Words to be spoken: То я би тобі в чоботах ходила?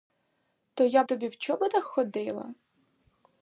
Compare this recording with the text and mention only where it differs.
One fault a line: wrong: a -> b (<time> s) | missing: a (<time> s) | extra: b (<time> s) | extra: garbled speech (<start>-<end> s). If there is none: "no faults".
missing: би (1.0 s)